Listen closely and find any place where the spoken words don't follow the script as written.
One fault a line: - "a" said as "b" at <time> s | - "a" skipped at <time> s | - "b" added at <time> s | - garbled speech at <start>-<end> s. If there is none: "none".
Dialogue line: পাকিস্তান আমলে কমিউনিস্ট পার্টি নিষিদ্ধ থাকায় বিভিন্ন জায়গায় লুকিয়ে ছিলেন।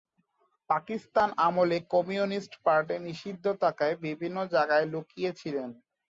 none